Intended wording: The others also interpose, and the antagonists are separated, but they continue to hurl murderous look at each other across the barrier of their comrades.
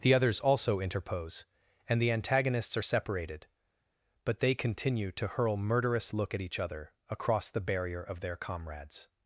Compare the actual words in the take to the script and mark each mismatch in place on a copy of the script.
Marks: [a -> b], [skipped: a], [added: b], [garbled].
The others also interpose, and the antagonists are separated, but they continue to hurl murderous look at each other across the barrier of their comrades.